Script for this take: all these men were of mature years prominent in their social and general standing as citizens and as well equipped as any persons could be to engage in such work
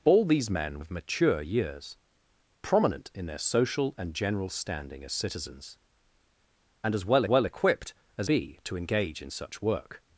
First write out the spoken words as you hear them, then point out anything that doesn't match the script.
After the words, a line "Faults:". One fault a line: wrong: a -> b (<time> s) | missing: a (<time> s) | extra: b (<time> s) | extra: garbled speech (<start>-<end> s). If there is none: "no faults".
all these men of mature years prominent in their social and general standing as citizens and as well well equipped as be to engage in such work
Faults:
missing: were (0.8 s)
extra: well (7.2 s)
missing: any persons could (8.3 s)